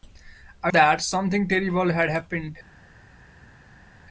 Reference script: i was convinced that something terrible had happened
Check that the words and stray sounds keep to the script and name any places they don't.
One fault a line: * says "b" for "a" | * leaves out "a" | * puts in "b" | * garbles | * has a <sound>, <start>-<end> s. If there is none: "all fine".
* leaves out "was convinced"